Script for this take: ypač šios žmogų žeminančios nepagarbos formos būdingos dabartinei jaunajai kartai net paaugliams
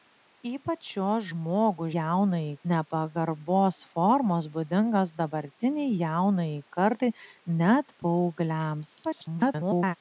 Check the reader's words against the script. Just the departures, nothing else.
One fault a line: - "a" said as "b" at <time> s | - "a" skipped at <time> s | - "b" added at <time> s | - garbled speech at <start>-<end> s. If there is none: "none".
- "žeminančios" said as "jaunajai" at 2.0 s
- garbled speech at 9.0-9.9 s